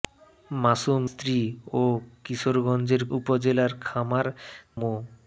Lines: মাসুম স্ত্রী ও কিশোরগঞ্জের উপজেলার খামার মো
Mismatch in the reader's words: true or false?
false